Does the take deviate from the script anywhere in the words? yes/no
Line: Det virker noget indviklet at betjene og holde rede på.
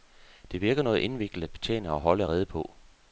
no